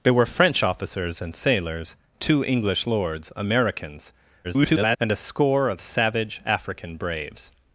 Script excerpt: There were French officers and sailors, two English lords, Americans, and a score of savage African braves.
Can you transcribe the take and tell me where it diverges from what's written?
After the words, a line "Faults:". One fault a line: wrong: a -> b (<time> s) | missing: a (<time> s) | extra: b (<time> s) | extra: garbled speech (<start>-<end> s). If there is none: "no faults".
There were French officers and sailors, two English lords, Americans, [garbled] and a score of savage African braves.
Faults:
extra: garbled speech (4.4-5.0 s)